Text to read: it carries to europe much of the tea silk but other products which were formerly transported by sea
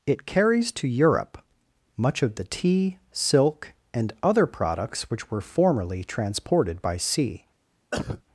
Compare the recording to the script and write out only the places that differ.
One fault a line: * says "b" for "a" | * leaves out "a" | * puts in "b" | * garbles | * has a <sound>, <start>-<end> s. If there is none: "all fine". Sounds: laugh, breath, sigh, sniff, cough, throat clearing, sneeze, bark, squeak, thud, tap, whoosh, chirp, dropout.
* says "and" for "but"
* has a cough, 7.9-8.2 s